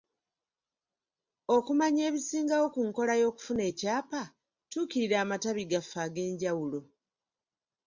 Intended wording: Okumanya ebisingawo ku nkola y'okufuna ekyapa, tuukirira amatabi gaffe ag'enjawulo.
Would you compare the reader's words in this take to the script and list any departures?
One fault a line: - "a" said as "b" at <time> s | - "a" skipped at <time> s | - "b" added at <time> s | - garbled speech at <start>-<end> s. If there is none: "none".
none